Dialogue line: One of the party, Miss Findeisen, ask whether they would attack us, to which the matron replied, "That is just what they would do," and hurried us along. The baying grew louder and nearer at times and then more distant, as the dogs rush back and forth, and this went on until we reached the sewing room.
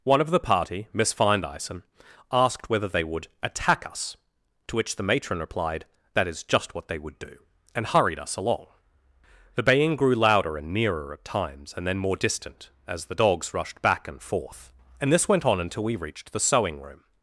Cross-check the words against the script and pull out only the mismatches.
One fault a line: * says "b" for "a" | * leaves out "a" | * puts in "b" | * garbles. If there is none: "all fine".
* says "asked" for "ask"
* says "rushed" for "rush"